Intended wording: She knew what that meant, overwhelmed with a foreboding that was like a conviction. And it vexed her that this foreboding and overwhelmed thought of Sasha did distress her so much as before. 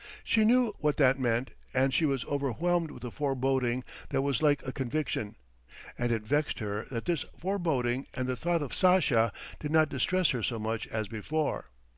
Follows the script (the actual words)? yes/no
no